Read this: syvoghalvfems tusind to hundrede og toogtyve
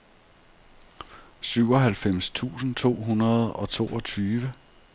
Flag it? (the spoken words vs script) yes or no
no